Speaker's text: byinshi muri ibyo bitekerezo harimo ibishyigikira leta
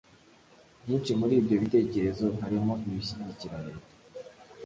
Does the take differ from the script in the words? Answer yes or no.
no